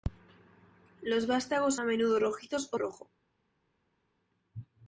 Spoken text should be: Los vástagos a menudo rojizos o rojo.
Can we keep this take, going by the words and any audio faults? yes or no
yes